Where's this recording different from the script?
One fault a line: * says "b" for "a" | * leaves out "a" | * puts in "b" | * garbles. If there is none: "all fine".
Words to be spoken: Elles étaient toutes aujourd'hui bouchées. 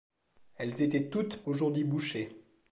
all fine